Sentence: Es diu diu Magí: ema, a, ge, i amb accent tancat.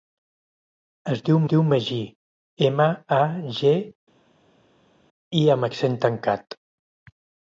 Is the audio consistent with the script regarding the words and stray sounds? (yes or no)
yes